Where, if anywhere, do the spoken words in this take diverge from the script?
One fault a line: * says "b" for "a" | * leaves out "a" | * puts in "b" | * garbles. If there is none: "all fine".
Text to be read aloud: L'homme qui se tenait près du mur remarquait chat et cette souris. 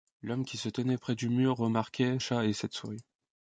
all fine